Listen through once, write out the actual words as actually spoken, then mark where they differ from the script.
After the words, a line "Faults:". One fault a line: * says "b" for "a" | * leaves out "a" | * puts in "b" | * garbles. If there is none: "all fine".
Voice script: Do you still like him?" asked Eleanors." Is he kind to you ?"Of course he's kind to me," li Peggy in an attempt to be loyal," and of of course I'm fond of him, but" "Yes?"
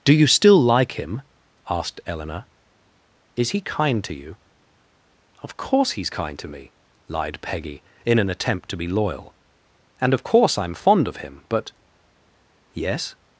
Do you still like him?" asked Eleanor." Is he kind to you ?"Of course he's kind to me," lied Peggy in an attempt to be loyal," and of course I'm fond of him, but" "Yes?"
Faults:
* says "Eleanor" for "Eleanors"
* says "lied" for "li"
* leaves out "of"